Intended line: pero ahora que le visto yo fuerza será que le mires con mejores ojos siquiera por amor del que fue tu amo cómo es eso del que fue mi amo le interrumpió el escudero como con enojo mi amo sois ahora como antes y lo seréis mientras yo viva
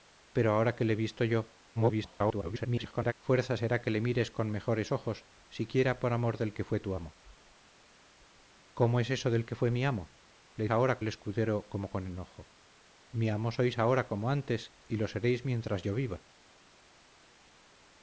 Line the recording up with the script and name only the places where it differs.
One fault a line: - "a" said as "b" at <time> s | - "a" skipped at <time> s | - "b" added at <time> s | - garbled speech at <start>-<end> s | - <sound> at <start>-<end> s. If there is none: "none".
- garbled speech at 1.8-3.1 s
- "interrumpió" said as "ahora" at 10.7 s